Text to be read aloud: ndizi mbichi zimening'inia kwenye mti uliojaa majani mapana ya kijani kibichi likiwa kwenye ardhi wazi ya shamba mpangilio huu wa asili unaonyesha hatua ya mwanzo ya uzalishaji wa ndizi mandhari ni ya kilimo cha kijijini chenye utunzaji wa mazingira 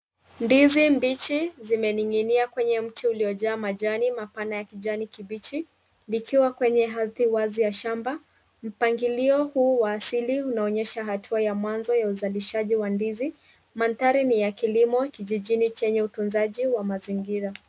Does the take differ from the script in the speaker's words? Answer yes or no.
yes